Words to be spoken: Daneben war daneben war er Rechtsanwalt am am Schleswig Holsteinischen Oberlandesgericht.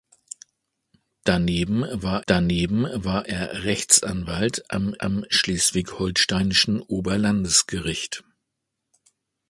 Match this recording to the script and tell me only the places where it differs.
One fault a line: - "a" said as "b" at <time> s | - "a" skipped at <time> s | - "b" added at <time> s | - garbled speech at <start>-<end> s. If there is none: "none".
none